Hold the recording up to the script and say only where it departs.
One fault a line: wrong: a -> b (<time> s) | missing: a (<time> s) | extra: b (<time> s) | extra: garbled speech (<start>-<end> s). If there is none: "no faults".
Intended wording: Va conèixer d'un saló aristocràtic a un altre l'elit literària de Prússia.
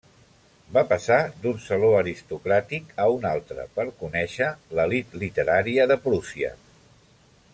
wrong: conèixer -> passar (0.9 s)
extra: per conèixer (3.8 s)